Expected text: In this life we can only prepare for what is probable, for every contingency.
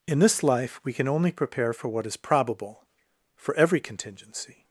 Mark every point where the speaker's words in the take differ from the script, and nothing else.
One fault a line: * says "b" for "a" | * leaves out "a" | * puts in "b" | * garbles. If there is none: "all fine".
all fine